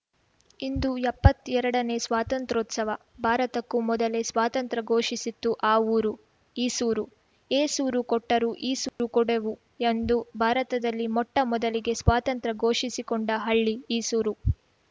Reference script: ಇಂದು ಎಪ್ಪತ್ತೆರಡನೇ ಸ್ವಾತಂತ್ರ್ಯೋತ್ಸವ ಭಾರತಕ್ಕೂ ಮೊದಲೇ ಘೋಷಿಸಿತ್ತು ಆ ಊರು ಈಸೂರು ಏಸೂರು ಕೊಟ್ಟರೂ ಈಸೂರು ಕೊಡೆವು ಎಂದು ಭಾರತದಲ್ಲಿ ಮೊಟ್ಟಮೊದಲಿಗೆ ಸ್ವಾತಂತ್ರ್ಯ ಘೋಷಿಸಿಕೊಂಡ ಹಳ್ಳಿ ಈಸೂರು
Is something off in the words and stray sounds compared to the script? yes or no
yes